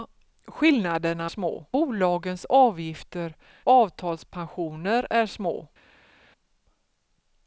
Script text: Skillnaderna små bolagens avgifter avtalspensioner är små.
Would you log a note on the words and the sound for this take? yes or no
no